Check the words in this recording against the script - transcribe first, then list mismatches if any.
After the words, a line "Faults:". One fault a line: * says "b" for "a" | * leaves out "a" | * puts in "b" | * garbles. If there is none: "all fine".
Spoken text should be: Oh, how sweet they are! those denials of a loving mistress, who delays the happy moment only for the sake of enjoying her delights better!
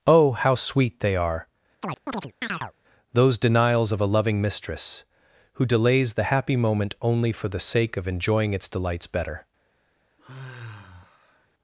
Oh, how sweet they are! those denials of a loving mistress, who delays the happy moment only for the sake of enjoying its delights better!
Faults:
* says "its" for "her"